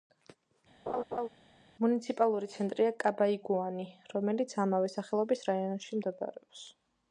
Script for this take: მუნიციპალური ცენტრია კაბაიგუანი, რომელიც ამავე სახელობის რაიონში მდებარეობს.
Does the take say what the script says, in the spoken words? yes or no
yes